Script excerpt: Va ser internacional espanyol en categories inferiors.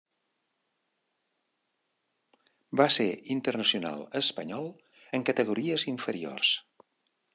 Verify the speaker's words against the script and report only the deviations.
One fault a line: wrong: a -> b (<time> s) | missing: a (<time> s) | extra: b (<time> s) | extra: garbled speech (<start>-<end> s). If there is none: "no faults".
no faults